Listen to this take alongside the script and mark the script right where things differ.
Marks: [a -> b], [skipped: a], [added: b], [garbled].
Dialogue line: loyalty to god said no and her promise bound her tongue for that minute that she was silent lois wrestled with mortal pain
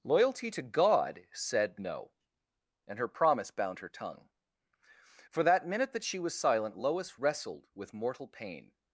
loyalty to god said no and her promise bound her tongue for that minute that she was silent lois wrestled with mortal pain